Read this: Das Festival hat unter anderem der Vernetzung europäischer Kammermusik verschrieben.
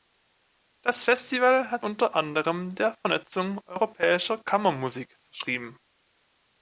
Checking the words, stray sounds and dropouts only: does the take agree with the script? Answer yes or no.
yes